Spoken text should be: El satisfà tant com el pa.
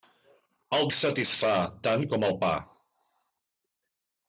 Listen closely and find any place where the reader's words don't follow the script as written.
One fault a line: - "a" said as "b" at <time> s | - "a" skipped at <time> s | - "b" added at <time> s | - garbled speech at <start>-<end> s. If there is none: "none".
none